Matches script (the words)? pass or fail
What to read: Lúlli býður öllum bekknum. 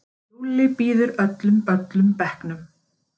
fail